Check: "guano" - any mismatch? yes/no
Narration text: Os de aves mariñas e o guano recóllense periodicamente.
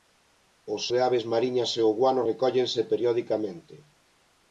no